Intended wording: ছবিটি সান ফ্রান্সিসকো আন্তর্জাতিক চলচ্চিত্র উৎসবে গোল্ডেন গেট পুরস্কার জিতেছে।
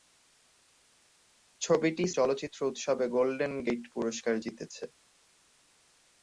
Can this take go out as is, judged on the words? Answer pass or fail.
fail